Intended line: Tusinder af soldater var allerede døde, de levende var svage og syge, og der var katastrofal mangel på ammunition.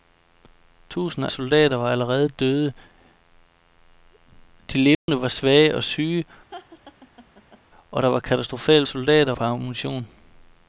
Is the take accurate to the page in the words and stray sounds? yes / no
no